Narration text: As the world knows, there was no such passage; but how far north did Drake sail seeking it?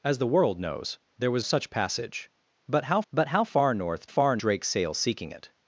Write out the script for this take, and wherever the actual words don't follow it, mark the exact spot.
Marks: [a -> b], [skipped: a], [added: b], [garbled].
As the world knows, there was [skipped: no] such passage; but how [added: but how] far north [did -> far] Drake sail seeking it?